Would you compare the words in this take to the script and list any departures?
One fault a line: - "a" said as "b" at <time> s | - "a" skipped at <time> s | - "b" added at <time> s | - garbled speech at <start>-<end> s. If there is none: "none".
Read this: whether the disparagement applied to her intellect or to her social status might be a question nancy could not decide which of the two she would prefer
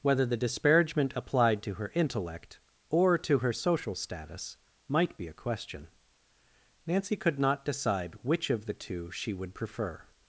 none